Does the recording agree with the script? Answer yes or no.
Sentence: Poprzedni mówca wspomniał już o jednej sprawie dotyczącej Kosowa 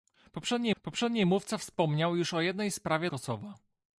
no